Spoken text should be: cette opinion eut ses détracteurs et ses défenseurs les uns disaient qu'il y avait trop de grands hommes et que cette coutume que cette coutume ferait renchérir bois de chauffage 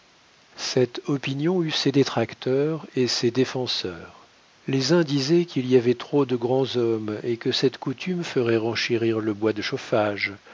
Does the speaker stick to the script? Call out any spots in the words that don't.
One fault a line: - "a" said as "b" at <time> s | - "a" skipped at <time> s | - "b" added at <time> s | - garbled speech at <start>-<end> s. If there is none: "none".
- "que cette coutume" skipped at 8.2 s
- "le" added at 9.2 s